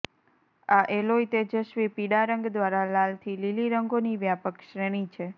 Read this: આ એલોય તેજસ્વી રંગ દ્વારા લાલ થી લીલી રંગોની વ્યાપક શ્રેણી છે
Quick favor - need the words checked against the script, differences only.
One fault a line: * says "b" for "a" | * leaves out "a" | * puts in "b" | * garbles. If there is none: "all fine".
* puts in "પીળા"